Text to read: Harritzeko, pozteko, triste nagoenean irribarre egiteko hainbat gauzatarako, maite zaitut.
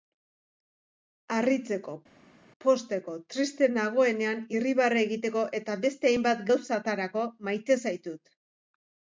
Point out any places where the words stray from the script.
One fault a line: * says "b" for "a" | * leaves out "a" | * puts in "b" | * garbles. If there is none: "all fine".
* puts in "eta beste"